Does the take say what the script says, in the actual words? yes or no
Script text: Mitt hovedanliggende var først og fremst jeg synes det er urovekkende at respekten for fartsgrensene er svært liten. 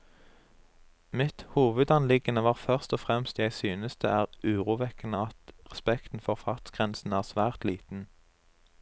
yes